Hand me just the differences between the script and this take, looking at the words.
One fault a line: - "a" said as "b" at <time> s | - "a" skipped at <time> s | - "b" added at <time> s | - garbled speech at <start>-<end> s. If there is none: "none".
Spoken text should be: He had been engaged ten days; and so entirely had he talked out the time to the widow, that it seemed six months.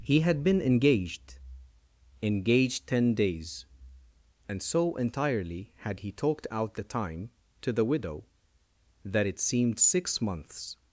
- "engaged" added at 2.2 s